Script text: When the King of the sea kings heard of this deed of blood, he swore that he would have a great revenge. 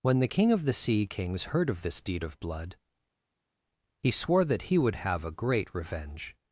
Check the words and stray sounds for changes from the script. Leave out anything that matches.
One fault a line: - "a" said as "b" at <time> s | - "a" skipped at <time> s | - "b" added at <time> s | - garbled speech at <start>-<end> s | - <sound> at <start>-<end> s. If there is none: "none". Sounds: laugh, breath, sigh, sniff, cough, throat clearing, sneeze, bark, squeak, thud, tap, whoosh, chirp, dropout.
none